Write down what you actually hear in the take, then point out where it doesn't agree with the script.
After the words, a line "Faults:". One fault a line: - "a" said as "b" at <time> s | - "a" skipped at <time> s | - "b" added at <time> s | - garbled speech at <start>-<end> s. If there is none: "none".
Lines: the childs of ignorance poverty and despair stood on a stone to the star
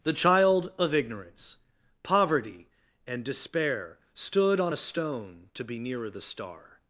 the child of ignorance poverty and despair stood on a stone to be nearer the star
Faults:
- "childs" said as "child" at 0.1 s
- "be nearer" added at 5.6 s